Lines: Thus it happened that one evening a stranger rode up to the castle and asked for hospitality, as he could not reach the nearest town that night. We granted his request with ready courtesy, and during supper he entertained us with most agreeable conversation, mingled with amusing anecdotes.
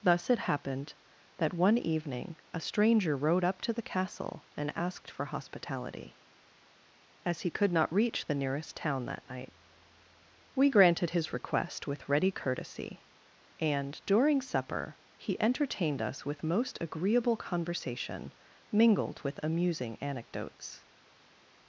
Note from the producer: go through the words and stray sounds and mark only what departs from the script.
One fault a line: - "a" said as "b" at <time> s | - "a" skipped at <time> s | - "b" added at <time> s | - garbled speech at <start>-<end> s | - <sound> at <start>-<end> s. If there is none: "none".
none